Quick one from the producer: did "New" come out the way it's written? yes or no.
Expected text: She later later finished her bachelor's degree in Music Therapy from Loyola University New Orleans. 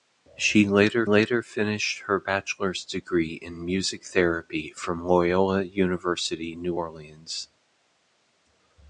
yes